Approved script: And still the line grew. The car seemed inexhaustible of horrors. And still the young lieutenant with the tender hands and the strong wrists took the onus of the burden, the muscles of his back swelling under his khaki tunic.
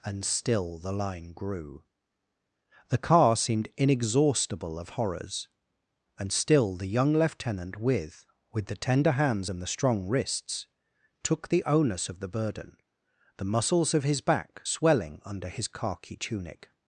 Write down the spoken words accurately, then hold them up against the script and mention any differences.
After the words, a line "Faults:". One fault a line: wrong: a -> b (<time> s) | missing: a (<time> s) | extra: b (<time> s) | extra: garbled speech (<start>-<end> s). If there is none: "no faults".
And still the line grew. The car seemed inexhaustible of horrors. And still the young lieutenant with with the tender hands and the strong wrists took the onus of the burden, the muscles of his back swelling under his khaki tunic.
Faults:
extra: with (8.5 s)